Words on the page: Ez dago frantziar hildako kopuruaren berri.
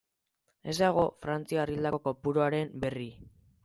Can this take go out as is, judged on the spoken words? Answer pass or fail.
pass